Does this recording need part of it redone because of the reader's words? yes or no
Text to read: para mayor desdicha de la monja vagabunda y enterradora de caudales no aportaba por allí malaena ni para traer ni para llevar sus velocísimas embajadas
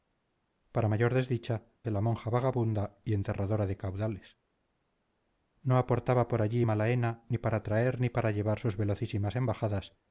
no